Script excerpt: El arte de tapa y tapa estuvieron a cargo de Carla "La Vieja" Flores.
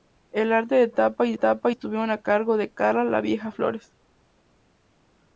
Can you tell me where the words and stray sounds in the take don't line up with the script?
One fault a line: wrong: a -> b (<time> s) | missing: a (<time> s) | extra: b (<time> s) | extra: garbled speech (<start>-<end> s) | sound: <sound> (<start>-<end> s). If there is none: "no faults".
no faults